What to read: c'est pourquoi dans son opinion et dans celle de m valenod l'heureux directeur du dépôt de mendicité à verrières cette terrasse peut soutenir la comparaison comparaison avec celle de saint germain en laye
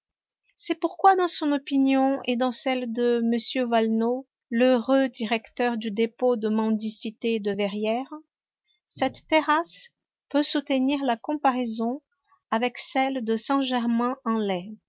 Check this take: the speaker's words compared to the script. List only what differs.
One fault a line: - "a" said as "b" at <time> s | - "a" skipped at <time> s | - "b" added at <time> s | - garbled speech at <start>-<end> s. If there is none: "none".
- "à" said as "de" at 7.4 s
- "comparaison" skipped at 12.0 s